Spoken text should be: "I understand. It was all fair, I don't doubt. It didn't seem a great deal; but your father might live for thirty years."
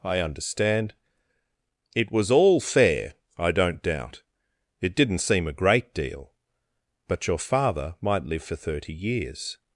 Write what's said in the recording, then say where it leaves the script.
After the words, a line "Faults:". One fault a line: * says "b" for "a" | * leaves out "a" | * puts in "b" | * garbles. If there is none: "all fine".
"I understand. It was all fair, I don't doubt. It didn't seem a great deal; but your father might live for thirty years."
Faults:
all fine